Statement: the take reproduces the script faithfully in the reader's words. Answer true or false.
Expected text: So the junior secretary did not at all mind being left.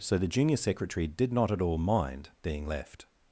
true